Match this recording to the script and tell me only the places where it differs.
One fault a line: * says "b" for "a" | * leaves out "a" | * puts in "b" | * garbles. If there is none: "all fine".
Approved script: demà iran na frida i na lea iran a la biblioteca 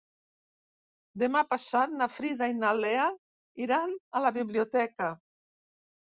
* says "passat" for "iran"